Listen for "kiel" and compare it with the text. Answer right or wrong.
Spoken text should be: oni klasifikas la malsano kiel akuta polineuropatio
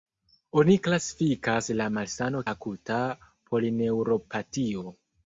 wrong